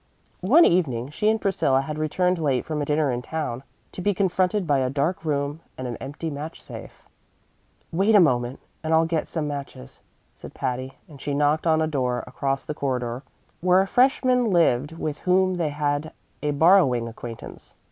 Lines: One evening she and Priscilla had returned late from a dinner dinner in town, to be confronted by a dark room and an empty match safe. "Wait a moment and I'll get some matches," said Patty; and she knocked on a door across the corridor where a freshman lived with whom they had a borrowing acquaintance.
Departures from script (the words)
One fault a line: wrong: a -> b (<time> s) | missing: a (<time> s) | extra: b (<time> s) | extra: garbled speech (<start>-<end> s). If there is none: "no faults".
missing: dinner (3.1 s)